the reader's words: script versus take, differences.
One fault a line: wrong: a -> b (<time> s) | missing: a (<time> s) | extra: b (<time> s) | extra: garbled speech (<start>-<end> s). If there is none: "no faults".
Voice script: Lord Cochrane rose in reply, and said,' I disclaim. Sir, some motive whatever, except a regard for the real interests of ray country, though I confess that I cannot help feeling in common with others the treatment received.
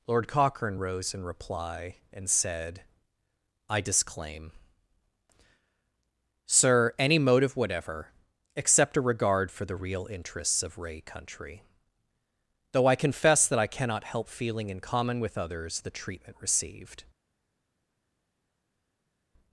wrong: some -> any (7.0 s)